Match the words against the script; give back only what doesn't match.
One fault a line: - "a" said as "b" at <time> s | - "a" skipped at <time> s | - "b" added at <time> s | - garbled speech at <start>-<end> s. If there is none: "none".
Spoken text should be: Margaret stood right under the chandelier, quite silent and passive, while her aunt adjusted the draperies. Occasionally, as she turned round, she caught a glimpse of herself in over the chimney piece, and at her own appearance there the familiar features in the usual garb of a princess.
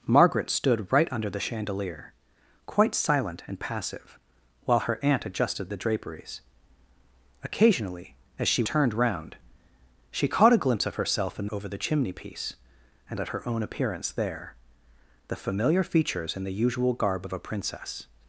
none